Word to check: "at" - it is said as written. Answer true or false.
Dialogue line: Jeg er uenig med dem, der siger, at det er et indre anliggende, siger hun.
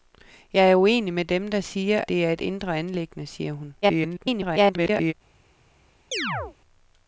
false